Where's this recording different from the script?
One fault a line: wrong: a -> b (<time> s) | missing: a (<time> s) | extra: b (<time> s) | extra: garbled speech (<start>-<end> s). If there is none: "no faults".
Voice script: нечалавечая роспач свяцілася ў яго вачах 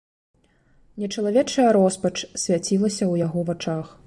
no faults